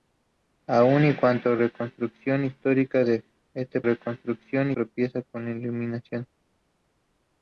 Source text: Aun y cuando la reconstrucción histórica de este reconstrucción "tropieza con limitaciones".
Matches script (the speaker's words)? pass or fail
pass